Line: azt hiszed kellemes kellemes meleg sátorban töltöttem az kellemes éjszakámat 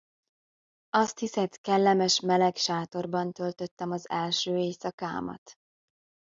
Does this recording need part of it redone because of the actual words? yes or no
yes